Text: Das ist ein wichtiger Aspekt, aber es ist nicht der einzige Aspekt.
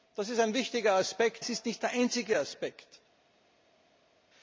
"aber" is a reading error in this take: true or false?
true